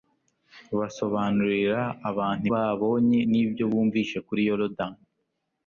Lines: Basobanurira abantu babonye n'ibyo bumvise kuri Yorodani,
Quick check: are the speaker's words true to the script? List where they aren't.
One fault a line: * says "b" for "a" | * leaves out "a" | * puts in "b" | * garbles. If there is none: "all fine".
all fine